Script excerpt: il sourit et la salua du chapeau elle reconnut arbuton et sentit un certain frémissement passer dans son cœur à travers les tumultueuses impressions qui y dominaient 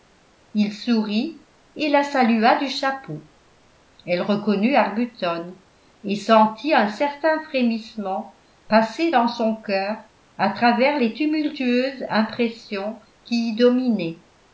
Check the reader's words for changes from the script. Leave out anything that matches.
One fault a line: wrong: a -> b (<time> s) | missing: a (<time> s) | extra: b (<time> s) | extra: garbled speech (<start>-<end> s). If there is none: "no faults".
no faults